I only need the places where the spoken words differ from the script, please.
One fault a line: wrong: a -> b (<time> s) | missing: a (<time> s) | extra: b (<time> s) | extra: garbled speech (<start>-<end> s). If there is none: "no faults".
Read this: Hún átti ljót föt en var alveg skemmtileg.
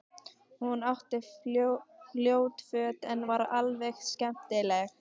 no faults